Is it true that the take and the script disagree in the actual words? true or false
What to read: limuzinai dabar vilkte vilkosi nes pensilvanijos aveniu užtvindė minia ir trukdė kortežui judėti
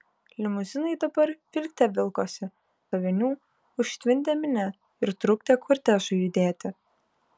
true